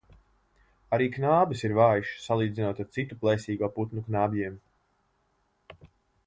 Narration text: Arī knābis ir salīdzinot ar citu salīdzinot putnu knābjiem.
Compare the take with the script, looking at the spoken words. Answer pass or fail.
fail